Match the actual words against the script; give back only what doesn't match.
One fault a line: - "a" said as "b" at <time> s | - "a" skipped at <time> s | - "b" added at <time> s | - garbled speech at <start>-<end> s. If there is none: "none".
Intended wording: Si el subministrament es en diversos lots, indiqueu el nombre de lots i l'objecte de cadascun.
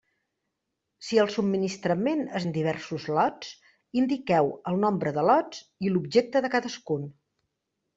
none